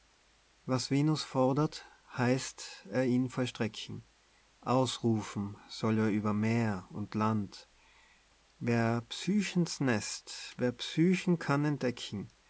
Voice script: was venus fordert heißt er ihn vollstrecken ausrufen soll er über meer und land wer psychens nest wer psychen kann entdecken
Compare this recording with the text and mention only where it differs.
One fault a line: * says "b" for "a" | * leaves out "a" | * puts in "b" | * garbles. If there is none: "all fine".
all fine